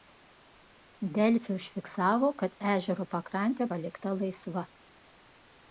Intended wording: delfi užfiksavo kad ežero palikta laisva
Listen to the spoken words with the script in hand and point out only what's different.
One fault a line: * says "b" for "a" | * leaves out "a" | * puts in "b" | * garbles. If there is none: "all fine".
* puts in "pakrantė"